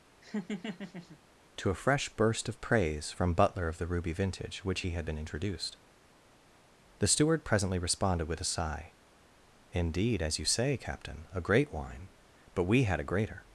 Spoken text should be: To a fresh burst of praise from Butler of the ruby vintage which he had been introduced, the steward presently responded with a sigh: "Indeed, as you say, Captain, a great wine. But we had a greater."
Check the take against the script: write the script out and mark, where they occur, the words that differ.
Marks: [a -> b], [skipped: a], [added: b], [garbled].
To a fresh burst of praise from Butler of the ruby vintage which he had been introduced, the steward presently responded with a sigh: "Indeed, as you say, Captain, a great wine. But we had a greater."